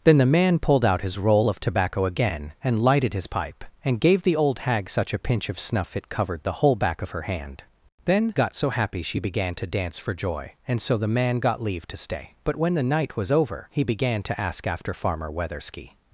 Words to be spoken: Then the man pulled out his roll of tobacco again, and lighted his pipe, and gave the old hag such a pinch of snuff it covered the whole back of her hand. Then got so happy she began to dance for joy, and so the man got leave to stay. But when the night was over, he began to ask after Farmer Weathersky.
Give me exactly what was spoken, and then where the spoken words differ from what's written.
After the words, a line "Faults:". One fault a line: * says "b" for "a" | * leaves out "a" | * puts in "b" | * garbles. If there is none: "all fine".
Then the man pulled out his roll of tobacco again, and lighted his pipe, and gave the old hag such a pinch of snuff it covered the whole back of her hand. Then got so happy she began to dance for joy, and so the man got leave to stay. But when the night was over, he began to ask after Farmer Weathersky.
Faults:
all fine